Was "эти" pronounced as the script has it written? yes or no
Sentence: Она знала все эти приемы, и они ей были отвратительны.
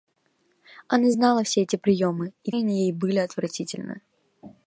yes